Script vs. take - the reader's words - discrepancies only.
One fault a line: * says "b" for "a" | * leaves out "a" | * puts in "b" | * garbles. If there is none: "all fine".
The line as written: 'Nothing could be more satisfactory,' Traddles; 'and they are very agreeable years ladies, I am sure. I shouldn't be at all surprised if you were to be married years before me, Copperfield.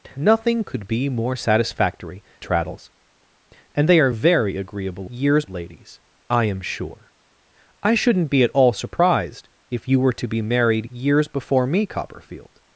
all fine